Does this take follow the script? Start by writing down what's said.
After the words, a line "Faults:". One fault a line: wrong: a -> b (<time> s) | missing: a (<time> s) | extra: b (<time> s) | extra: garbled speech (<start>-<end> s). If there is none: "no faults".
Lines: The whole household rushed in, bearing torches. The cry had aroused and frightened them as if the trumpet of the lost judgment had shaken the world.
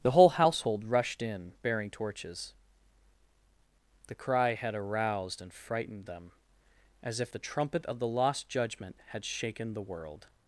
The whole household rushed in, bearing torches. The cry had aroused and frightened them as if the trumpet of the lost judgment had shaken the world.
Faults:
no faults